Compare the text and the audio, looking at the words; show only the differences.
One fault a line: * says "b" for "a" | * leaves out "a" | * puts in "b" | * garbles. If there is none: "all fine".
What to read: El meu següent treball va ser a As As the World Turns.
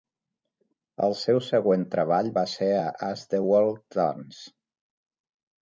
* says "seu" for "meu"
* leaves out "As"